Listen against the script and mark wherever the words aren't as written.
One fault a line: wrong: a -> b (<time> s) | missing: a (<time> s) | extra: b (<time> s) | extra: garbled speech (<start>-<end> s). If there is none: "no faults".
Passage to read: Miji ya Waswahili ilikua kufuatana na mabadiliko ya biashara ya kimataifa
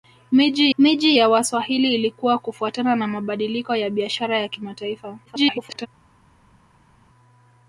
extra: miji (0.8 s)
extra: garbled speech (5.3-5.9 s)